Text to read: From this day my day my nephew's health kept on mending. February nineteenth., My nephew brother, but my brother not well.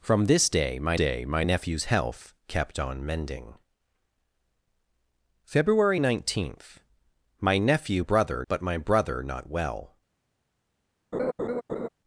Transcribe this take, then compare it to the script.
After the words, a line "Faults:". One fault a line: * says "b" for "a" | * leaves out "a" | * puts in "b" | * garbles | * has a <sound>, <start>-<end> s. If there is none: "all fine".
From this day my day my nephew's health kept on mending. February nineteenth., My nephew brother, but my brother not well.
Faults:
* has a laugh, 11.1-11.9 s